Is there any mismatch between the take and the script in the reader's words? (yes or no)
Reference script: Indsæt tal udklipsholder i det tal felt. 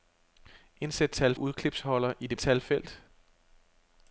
no